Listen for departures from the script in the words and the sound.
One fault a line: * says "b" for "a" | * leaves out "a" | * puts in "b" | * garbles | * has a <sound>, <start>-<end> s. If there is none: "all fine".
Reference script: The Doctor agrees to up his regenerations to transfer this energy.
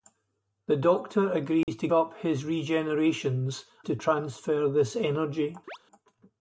* has a dropout, 1.6-1.7 s
* has a chirp, 5.7-5.8 s